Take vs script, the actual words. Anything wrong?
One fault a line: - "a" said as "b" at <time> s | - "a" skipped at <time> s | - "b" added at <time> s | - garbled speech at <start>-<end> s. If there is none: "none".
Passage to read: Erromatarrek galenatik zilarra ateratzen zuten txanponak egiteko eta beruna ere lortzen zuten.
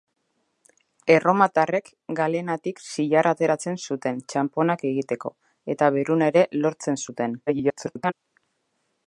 - garbled speech at 7.5-8.1 s